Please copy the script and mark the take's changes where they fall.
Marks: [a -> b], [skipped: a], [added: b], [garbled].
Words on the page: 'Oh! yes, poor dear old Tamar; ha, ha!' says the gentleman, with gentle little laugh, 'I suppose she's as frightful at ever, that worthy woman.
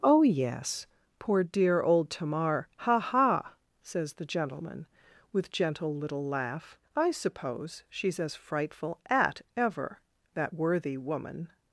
'Oh! yes, poor dear old Tamar; ha, ha!' says the gentleman, with gentle little laugh, 'I suppose she's as frightful at ever, that worthy woman.